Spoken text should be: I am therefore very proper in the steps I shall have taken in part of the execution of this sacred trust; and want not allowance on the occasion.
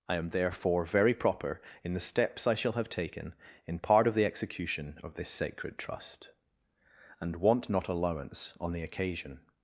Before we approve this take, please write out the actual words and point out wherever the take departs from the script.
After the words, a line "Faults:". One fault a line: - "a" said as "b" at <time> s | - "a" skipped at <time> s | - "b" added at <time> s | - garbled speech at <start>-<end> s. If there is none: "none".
I am therefore very proper in the steps I shall have taken in part of the execution of this sacred trust; and want not allowance on the occasion.
Faults:
none